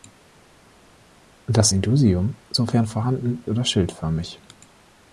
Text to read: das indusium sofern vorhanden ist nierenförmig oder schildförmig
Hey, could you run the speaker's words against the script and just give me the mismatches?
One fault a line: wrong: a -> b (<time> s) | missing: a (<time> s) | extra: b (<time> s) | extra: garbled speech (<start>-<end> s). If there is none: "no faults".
missing: ist nierenförmig (3.4 s)